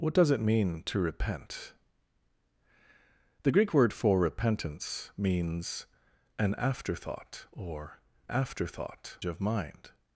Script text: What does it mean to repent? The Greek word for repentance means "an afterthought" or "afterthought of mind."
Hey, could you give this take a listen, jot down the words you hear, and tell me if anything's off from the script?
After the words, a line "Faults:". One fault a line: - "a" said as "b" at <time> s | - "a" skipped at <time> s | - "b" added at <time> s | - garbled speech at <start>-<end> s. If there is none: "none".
What does it mean to repent? The Greek word for repentance means "an afterthought" or "afterthought of mind."
Faults:
none